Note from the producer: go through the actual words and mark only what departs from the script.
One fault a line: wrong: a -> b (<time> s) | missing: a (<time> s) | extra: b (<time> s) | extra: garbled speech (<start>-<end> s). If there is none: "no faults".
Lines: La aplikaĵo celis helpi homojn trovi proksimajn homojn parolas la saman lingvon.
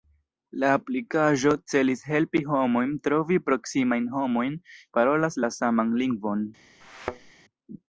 no faults